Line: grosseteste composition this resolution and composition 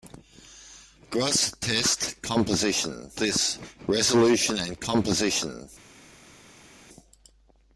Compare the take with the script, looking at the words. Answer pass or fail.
pass